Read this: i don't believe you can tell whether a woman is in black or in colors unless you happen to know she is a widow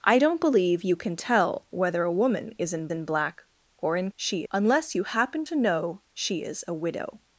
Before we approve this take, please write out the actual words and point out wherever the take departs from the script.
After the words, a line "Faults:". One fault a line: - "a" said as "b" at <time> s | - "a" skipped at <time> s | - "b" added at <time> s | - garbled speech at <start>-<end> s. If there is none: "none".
i don't believe you can tell whether a woman is in in black or in she unless you happen to know she is a widow
Faults:
- "in" added at 2.9 s
- "colors" said as "she" at 4.2 s